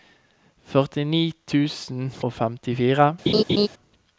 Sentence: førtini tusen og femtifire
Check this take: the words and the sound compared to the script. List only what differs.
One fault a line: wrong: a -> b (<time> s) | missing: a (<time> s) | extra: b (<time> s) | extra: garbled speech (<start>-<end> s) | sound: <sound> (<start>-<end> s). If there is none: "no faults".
sound: laugh (3.3-3.7 s)